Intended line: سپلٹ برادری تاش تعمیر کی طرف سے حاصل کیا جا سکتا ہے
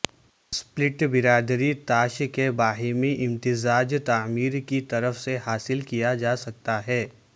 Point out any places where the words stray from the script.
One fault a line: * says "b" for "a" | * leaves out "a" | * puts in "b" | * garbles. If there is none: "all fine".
* puts in "کے باہمی امتزاج"